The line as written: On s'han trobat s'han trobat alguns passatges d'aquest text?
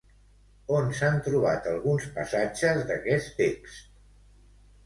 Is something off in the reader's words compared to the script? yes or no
yes